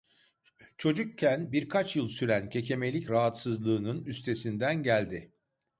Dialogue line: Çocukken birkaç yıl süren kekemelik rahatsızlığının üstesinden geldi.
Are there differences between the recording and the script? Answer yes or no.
no